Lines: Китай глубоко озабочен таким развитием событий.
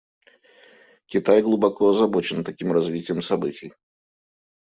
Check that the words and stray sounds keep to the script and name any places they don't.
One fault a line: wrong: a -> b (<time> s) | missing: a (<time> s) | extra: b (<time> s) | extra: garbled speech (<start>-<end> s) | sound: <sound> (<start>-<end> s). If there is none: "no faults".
no faults